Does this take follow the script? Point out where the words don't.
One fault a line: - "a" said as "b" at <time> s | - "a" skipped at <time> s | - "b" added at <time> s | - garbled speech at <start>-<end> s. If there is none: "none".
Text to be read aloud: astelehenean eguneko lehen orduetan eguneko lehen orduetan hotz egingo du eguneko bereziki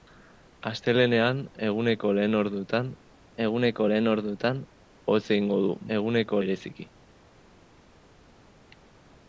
none